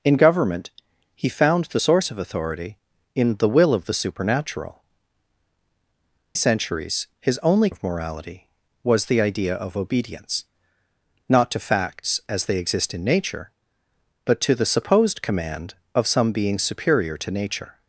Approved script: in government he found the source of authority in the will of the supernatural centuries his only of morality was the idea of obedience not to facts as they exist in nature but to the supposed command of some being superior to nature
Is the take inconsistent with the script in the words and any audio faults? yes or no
no